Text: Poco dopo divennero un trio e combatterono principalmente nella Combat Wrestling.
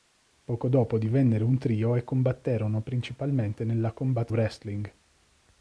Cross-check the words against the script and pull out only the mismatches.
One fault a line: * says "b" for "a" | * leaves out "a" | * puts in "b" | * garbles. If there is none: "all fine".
all fine